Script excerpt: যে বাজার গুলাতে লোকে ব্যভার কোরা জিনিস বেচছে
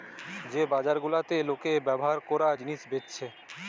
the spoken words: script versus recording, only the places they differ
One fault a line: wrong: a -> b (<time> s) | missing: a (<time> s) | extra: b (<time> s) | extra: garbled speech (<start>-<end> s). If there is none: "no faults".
no faults